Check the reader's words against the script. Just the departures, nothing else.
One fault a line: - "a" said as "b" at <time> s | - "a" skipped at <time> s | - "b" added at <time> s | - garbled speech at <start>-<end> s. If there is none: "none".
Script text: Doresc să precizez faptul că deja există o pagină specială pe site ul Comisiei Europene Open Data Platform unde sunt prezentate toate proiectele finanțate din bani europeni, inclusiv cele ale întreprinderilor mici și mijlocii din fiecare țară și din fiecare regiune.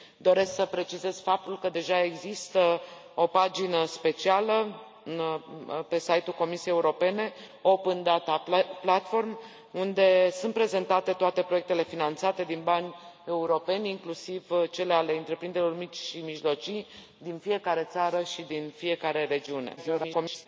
- garbled speech at 19.8-20.5 s